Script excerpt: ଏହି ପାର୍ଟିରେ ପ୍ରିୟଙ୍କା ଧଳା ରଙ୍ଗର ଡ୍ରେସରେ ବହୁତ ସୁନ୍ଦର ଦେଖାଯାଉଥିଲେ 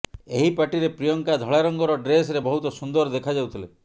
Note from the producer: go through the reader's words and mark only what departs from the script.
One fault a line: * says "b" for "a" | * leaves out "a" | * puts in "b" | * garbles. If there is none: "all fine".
all fine